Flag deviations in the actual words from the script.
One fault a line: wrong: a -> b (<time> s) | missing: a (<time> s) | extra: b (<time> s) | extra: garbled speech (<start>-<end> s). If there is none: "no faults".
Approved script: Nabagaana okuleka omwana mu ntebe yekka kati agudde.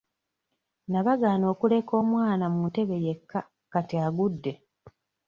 no faults